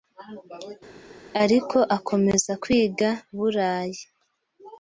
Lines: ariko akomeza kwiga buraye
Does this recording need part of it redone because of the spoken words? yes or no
no